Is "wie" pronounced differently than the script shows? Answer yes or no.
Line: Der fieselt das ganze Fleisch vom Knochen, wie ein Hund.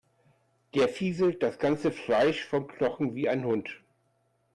no